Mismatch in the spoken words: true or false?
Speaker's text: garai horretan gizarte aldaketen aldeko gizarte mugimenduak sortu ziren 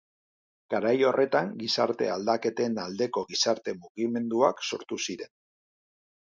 false